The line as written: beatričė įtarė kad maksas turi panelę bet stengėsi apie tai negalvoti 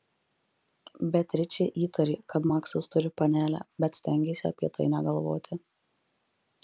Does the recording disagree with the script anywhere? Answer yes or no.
no